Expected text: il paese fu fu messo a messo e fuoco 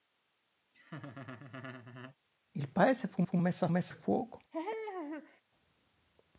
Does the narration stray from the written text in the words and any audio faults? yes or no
yes